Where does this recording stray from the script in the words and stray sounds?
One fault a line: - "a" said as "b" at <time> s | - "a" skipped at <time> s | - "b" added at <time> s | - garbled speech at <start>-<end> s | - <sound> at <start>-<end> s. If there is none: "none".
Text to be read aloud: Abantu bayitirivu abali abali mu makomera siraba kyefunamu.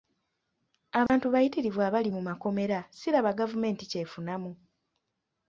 - dropout at 1.1-1.1 s
- "abali" skipped at 2.1 s
- "gavumenti" added at 3.4 s